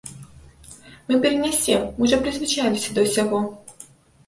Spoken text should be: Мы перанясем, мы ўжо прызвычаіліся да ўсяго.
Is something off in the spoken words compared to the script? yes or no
no